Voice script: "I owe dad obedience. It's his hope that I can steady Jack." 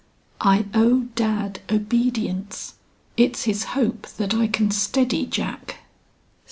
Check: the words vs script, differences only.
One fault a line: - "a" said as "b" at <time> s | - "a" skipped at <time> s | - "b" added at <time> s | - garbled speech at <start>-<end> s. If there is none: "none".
none